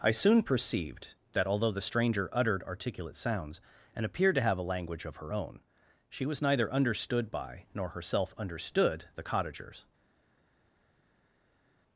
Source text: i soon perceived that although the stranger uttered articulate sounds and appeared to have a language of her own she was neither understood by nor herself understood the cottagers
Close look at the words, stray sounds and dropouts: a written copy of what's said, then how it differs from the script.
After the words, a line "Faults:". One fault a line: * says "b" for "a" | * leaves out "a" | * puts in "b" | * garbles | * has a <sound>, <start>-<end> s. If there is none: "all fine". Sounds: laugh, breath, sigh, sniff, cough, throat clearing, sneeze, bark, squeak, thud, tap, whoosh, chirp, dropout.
i soon perceived that although the stranger uttered articulate sounds and appeared to have a language of her own she was neither understood by nor herself understood the cottagers
Faults:
all fine